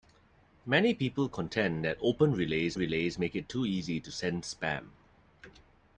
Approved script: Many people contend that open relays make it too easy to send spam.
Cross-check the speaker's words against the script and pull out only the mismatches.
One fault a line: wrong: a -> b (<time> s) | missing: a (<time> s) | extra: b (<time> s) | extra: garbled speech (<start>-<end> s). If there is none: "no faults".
extra: relays (2.7 s)